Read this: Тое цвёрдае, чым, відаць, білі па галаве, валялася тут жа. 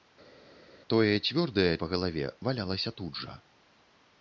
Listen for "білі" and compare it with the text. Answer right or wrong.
wrong